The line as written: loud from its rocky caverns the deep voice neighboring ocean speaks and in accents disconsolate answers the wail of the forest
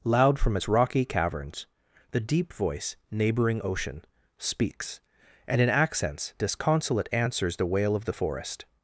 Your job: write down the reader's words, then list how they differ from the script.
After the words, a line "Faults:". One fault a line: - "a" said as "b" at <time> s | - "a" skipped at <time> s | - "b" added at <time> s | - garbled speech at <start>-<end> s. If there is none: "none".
loud from its rocky caverns the deep voice neighboring ocean speaks and in accents disconsolate answers the wail of the forest
Faults:
none